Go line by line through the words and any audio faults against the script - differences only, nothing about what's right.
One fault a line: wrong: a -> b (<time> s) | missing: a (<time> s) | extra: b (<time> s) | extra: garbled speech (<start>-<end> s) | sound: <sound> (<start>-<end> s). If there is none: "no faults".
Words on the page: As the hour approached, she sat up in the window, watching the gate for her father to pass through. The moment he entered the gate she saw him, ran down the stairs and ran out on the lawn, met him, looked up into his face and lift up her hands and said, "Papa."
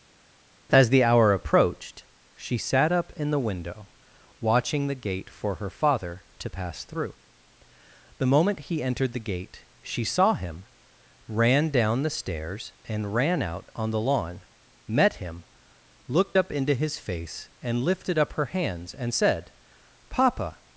wrong: lift -> lifted (17.8 s)